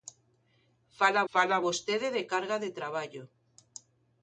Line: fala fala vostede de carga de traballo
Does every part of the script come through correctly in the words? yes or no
yes